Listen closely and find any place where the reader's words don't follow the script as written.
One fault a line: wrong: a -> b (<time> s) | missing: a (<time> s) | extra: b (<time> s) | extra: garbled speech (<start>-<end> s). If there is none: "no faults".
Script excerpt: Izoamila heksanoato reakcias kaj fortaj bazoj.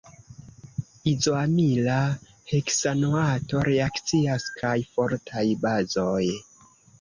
no faults